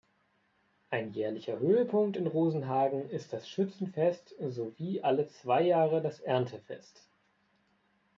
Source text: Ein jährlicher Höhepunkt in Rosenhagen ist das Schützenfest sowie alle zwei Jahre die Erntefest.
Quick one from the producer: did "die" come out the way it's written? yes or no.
no